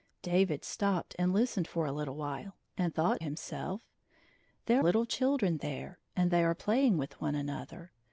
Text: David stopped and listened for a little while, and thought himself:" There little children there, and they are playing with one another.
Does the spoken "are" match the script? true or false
true